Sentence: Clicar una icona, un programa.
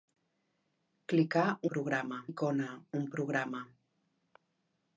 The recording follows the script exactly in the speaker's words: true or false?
false